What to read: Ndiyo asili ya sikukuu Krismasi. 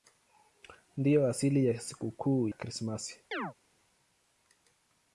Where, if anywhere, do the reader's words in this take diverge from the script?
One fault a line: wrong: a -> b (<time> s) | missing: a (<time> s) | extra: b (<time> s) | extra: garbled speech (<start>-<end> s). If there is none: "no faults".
no faults